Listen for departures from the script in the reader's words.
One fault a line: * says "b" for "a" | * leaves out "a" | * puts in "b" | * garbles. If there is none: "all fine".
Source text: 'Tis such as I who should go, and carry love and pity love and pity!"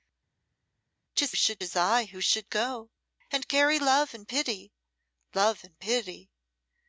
* says "should" for "such"